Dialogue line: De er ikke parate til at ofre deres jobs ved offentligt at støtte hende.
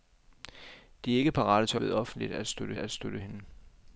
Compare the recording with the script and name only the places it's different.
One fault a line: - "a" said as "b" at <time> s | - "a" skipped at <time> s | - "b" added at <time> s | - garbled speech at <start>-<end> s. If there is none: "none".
- "ofre deres jobs ved offentligt" said as "ved offentligt at støtte" at 1.8 s